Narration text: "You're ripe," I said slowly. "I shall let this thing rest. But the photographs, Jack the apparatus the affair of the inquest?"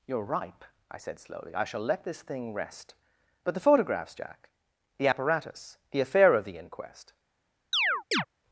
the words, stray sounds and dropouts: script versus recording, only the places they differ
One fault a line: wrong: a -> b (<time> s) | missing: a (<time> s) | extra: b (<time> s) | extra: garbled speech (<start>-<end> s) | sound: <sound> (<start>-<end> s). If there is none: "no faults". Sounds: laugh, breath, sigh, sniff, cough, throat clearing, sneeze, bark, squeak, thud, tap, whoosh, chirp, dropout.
sound: chirp (7.7-8.3 s)